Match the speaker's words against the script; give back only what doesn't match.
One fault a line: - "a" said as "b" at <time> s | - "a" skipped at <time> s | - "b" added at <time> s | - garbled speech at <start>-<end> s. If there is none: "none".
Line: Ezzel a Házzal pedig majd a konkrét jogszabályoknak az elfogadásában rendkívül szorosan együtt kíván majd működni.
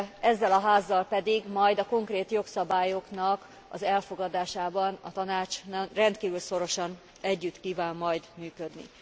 - "a Tanács" added at 5.0 s